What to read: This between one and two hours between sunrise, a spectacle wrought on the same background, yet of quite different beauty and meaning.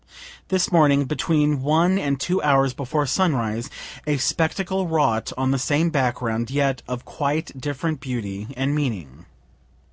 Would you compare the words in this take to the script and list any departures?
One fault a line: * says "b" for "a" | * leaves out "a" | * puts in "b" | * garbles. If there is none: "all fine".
* puts in "morning"
* says "before" for "between"